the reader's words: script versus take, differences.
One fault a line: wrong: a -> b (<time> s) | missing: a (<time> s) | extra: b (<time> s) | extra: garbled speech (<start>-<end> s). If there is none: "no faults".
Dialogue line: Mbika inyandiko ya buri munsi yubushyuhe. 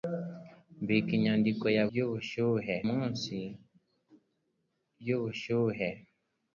wrong: buri -> yubushyuhe (1.9 s)